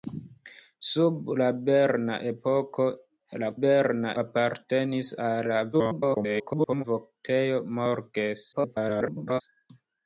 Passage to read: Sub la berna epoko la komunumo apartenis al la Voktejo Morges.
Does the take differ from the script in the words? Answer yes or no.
yes